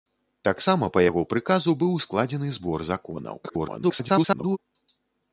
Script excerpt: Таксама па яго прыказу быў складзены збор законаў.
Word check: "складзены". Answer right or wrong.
right